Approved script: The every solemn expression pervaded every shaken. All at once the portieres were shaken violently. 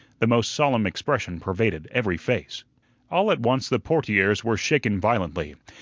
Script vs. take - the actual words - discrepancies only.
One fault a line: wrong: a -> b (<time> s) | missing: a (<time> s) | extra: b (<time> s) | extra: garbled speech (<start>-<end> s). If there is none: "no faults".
wrong: every -> most (0.2 s)
wrong: shaken -> face (2.2 s)